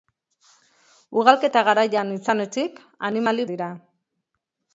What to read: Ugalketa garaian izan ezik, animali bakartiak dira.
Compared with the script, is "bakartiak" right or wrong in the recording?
wrong